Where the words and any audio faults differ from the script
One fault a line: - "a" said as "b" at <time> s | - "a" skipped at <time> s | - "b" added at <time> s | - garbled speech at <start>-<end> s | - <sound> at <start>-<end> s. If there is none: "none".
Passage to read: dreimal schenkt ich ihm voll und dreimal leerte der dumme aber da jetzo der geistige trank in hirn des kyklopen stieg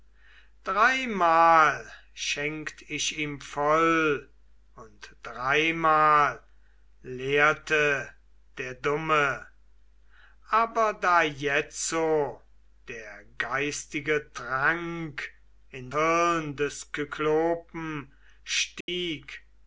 - dropout at 18.8-18.9 s